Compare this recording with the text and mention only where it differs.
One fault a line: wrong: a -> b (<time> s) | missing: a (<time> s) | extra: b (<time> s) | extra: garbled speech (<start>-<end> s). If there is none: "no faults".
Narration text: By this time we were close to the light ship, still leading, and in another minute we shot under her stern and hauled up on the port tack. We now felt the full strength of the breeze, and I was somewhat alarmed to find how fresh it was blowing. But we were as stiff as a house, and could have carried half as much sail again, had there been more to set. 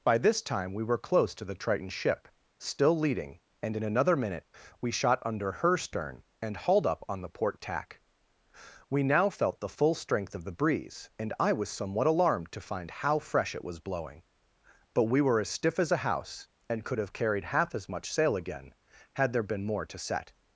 wrong: light -> triton (1.5 s)